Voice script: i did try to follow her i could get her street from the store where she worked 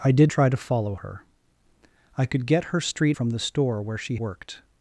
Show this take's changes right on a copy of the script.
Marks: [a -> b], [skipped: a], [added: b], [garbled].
i did try to follow her i could get her street from the store where she worked